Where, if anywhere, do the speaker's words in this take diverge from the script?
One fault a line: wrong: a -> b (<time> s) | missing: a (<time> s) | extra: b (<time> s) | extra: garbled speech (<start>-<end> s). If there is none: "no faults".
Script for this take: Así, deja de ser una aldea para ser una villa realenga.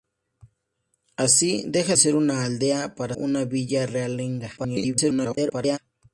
missing: de (1.9 s)
missing: ser (3.2 s)
extra: garbled speech (4.6-5.8 s)